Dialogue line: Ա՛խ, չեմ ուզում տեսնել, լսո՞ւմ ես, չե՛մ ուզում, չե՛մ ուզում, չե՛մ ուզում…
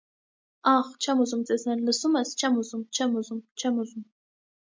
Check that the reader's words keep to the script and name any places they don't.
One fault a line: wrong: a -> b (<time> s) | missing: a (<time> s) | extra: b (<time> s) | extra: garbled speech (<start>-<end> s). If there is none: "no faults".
no faults